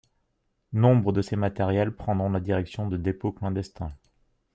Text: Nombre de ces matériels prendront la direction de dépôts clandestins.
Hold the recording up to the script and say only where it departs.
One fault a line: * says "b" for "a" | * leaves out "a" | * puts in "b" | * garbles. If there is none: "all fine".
all fine